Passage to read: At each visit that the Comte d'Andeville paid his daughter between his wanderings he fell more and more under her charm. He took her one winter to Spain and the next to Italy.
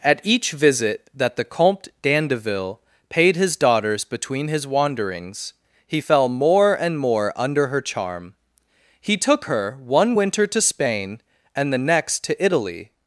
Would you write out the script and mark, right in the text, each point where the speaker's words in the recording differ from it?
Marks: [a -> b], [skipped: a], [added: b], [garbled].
At each visit that the Comte d'Andeville paid his [daughter -> daughters] between his wanderings he fell more and more under her charm. He took her one winter to Spain and the next to Italy.